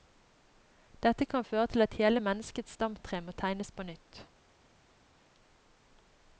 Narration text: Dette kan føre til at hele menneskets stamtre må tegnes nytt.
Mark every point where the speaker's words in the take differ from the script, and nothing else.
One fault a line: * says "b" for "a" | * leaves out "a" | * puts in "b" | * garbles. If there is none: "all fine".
* puts in "på"